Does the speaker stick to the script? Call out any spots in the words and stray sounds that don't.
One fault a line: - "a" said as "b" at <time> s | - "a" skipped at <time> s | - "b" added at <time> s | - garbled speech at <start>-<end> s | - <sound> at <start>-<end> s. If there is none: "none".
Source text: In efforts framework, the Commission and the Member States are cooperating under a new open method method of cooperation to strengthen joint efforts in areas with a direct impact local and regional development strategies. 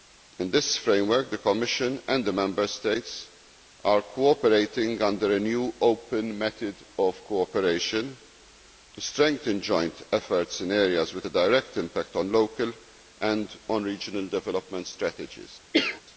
- "efforts" said as "this" at 0.5 s
- "method" skipped at 6.8 s
- "on" added at 12.2 s
- cough at 15.7-16.0 s